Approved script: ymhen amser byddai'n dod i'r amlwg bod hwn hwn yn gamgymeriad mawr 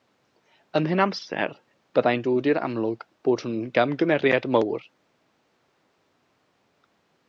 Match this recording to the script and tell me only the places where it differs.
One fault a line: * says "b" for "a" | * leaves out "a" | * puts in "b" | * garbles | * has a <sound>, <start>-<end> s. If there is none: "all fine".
* leaves out "hwn"